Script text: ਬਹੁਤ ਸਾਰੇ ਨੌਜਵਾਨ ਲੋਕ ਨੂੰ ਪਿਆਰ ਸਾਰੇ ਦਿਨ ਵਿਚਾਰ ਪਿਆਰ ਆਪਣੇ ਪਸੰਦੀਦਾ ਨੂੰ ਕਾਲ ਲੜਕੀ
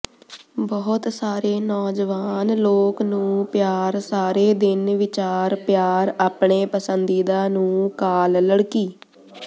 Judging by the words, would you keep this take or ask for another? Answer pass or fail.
pass